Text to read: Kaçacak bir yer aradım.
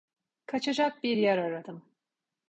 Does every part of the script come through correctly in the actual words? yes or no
yes